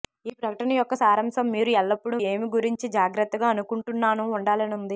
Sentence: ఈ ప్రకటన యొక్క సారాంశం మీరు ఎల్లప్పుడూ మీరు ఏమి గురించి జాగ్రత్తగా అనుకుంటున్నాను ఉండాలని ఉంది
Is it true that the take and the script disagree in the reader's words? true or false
true